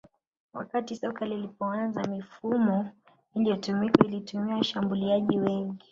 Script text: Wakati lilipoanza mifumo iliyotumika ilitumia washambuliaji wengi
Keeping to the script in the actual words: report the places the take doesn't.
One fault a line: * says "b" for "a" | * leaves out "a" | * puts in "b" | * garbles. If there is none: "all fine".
* puts in "soka"